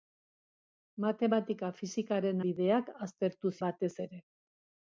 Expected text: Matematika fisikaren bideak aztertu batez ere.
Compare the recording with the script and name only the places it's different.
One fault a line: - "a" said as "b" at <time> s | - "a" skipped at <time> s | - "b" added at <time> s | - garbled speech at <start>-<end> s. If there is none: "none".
none